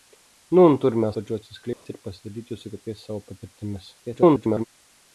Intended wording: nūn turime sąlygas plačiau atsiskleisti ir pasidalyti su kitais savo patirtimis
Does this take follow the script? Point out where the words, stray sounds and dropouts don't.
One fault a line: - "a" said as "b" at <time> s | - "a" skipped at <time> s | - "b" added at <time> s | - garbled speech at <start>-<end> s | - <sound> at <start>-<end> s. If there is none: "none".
- "sąlygas" skipped at 1.1 s
- dropout at 1.7-1.9 s
- garbled speech at 4.0-4.6 s